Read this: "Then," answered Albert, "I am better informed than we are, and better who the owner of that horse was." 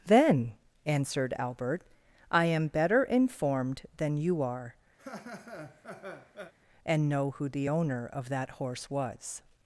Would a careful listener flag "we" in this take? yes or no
yes